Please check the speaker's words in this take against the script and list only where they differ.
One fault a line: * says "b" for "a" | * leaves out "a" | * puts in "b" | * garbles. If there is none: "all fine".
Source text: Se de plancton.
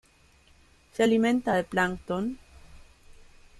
* puts in "alimenta"